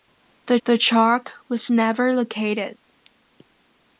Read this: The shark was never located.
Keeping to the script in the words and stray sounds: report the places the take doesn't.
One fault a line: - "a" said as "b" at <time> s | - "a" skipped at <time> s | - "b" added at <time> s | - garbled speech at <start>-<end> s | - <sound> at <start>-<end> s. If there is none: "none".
- "the" added at 0.7 s